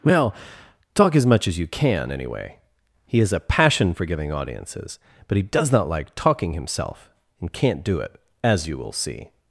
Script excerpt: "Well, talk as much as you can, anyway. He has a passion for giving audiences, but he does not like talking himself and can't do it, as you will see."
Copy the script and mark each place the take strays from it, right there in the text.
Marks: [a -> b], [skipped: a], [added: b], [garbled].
"Well, talk as much as you can, anyway. He has a passion for giving audiences, but he does not like talking himself and can't do it, as you will see."